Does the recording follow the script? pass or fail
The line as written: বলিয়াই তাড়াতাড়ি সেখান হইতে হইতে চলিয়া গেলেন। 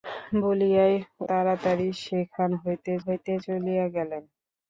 pass